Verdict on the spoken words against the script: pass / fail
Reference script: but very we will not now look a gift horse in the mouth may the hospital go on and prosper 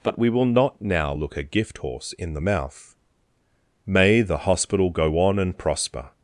fail